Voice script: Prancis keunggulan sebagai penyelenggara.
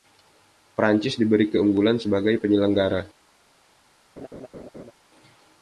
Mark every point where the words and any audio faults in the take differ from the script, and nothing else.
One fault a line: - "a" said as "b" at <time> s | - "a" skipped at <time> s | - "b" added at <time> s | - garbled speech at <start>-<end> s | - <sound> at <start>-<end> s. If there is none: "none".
- "diberi" added at 1.1 s
- laugh at 4.2-4.9 s